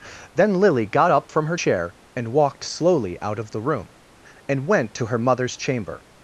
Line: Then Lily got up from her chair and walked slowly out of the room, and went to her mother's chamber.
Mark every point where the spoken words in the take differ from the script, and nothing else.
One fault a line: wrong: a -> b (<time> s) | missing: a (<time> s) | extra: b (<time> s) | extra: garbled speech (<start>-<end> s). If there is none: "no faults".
no faults